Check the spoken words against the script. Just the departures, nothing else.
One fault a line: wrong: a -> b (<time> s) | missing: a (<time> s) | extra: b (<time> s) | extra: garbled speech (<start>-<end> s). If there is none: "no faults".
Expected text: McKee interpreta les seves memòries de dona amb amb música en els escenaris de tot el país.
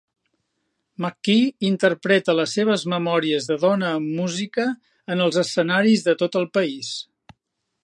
missing: amb (4.1 s)